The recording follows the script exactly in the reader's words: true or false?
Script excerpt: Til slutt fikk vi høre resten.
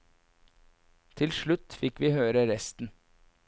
true